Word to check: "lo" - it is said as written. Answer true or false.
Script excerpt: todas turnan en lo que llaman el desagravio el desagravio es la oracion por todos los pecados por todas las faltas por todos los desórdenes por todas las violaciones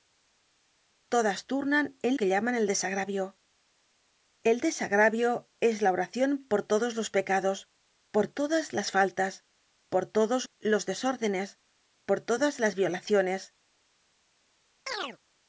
false